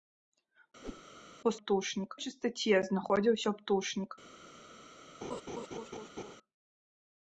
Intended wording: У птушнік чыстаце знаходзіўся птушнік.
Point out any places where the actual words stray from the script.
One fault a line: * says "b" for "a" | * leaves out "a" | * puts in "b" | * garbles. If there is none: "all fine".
all fine